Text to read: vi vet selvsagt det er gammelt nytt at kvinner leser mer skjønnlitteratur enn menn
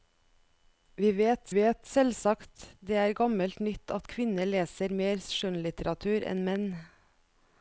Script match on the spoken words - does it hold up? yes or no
no